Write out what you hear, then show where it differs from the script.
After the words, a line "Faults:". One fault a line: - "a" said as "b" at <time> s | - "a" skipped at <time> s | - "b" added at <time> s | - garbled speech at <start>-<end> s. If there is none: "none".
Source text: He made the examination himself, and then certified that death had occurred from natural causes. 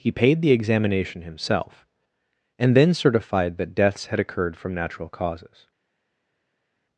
He paid the examination himself, and then certified that deaths had occurred from natural causes.
Faults:
- "made" said as "paid" at 0.1 s
- "death" said as "deaths" at 3.8 s